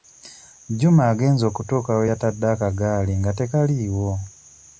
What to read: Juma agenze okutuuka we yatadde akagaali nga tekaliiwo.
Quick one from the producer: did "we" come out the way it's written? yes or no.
yes